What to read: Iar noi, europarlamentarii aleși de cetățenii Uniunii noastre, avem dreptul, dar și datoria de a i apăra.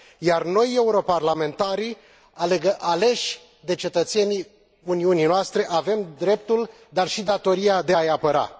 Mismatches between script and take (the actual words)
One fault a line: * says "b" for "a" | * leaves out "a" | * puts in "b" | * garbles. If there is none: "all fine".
all fine